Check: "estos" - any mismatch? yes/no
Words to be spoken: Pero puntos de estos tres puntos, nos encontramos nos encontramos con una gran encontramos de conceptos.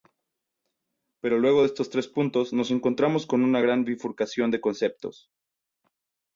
no